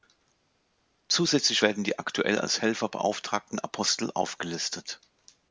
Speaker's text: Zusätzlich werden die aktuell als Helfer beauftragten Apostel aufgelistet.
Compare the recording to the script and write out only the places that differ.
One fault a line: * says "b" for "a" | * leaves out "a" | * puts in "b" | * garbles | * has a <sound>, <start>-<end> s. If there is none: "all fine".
all fine